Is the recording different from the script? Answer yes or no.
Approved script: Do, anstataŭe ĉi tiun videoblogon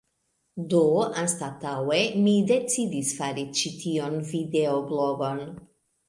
yes